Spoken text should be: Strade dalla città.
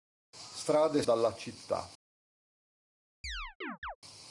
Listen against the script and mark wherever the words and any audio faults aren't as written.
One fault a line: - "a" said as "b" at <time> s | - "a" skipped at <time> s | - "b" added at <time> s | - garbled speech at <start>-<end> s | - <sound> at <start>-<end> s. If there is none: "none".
- chirp at 3.2-4.0 s